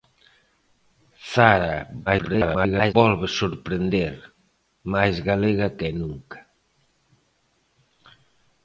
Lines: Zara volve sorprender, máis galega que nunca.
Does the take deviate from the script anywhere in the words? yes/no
yes